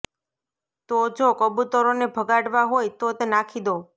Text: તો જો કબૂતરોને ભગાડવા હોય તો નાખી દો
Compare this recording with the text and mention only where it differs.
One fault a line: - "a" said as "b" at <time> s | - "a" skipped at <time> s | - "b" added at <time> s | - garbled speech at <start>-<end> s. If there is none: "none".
none